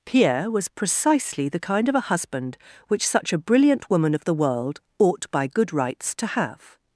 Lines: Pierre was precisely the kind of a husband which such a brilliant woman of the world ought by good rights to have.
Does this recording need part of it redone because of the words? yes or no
no